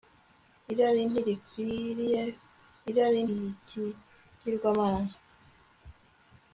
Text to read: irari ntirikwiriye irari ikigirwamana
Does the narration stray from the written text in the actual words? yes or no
no